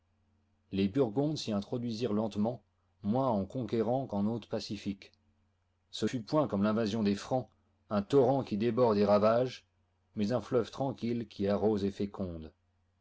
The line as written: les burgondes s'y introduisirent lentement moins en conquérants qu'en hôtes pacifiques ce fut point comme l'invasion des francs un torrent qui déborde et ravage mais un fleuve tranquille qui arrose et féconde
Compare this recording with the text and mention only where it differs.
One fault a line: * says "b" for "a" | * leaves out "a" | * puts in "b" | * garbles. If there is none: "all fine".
all fine